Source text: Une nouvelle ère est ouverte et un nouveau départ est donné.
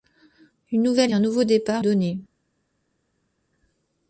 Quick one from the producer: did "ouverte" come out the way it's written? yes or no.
no